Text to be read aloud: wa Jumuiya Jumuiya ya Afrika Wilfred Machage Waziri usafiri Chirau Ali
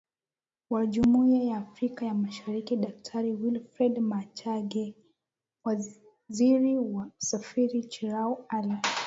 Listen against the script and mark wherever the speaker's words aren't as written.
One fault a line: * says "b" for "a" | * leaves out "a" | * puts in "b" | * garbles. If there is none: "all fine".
* says "ya Afrika" for "Jumuiya"
* says "Mashariki Daktari" for "Afrika"
* puts in "wa"